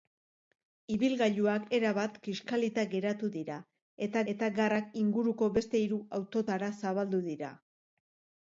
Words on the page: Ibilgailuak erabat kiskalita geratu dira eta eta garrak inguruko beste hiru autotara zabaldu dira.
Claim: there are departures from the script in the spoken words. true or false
false